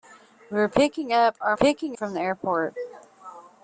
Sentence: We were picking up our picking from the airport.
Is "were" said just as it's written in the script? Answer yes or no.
yes